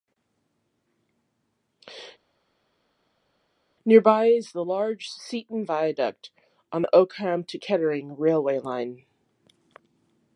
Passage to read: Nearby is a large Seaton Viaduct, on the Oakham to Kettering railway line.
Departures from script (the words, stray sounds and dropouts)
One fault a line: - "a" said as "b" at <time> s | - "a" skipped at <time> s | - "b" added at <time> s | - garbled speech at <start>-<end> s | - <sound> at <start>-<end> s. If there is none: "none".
- "a" said as "the" at 4.5 s